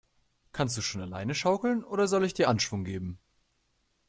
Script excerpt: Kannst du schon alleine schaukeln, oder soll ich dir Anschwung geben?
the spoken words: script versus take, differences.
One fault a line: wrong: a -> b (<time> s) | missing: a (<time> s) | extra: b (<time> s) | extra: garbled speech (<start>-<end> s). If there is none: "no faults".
no faults